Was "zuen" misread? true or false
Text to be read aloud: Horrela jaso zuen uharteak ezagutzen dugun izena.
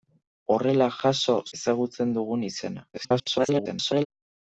true